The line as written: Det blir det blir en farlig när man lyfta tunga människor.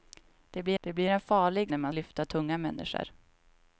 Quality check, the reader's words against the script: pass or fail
pass